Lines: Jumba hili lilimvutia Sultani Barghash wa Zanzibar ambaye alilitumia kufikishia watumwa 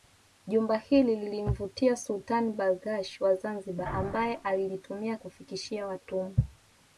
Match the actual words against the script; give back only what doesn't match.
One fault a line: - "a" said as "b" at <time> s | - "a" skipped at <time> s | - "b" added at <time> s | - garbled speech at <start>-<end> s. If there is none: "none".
none